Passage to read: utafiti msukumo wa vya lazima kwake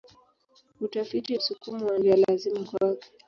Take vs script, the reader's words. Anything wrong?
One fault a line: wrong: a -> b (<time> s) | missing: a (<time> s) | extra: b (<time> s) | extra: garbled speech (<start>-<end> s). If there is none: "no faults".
no faults